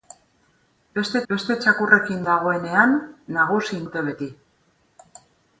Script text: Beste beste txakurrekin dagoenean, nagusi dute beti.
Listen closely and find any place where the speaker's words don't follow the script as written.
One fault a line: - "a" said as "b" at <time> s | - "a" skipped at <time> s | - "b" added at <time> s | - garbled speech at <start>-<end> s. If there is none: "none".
none